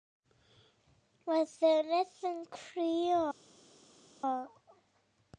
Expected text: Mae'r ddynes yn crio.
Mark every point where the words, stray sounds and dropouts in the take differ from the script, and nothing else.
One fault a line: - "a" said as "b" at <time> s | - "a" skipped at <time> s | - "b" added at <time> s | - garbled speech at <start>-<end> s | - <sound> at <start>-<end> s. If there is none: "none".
none